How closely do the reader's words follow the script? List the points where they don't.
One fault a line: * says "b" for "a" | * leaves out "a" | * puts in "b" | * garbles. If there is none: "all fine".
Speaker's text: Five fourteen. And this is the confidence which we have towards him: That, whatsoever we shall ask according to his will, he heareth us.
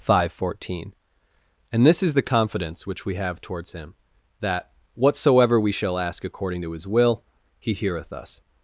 all fine